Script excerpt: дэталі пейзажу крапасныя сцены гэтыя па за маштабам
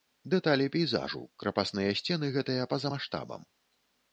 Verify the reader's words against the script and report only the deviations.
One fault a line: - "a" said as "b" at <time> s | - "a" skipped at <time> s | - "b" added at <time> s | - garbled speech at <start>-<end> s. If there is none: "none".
none